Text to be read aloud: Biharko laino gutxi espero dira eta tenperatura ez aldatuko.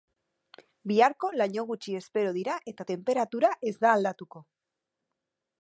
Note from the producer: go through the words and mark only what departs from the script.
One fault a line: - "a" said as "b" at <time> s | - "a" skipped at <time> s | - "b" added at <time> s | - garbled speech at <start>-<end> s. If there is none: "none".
- "da" added at 3.9 s